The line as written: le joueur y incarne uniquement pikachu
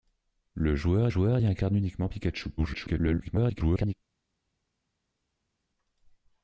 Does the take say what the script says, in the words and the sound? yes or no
no